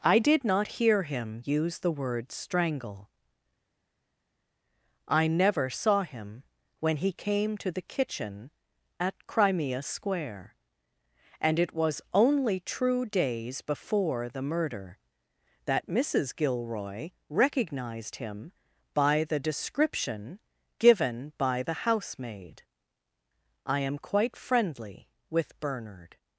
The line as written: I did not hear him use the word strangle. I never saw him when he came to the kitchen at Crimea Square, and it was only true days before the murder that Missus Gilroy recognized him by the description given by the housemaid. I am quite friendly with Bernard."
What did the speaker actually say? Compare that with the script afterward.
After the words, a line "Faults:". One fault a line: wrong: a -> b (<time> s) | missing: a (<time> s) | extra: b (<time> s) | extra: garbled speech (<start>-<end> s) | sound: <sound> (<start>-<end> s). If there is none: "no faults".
I did not hear him use the word strangle. I never saw him when he came to the kitchen at Crimea Square, and it was only true days before the murder that Missus Gilroy recognized him by the description given by the housemaid. I am quite friendly with Bernard."
Faults:
no faults